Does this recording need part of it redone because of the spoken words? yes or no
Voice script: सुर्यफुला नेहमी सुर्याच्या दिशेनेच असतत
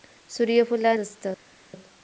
yes